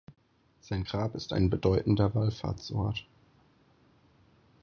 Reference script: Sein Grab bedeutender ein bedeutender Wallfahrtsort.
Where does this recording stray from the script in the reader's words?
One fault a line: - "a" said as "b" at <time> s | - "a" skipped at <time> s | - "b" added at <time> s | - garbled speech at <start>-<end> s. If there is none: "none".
- "bedeutender" said as "ist" at 1.1 s